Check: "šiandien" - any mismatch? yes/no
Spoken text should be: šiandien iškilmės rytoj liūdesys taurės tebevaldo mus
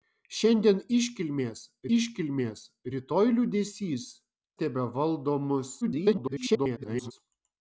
no